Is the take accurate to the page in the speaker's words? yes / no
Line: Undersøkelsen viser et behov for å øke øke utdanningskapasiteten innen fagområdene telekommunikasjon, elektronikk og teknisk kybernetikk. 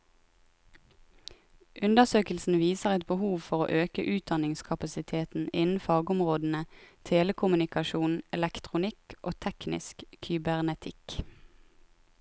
no